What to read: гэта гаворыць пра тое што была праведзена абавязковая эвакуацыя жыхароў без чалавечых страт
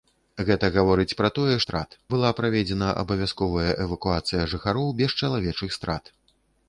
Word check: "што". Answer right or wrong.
wrong